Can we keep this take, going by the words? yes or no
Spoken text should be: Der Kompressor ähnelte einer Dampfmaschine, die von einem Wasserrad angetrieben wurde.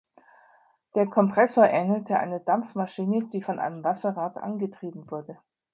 yes